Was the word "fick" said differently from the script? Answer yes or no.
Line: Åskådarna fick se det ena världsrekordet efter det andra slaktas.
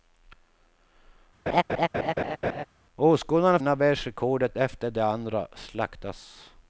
yes